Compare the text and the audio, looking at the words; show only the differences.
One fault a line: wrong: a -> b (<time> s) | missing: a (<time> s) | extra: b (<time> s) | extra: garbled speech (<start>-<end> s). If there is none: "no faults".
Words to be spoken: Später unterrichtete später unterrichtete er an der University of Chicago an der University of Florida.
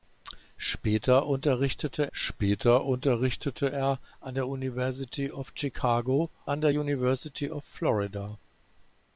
no faults